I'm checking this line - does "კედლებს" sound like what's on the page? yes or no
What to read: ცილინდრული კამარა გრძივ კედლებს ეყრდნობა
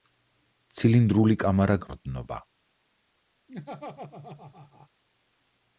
no